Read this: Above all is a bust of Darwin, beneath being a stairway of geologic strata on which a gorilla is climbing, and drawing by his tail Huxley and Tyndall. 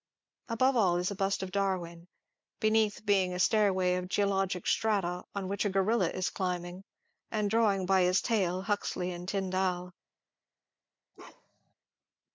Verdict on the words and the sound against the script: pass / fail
fail